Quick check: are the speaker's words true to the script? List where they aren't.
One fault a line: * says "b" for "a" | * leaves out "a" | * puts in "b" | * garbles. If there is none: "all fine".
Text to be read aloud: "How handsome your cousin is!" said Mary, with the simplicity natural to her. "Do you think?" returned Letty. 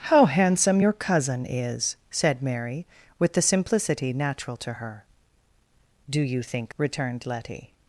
all fine